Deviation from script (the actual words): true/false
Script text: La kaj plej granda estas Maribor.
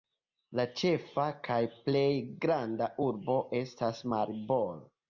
true